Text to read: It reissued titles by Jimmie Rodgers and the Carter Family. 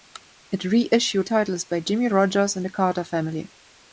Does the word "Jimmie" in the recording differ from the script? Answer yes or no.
no